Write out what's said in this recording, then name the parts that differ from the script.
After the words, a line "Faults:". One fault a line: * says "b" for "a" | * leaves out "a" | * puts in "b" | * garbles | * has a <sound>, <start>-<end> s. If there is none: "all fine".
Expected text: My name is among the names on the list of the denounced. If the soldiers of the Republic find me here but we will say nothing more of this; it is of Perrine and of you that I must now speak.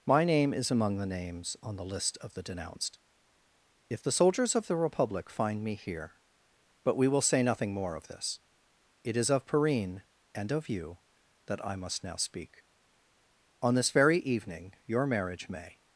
My name is among the names on the list of the denounced. If the soldiers of the Republic find me here but we will say nothing more of this; it is of Perrine and of you that I must now speak. On this very evening your marriage may
Faults:
* puts in "On this very evening your marriage may"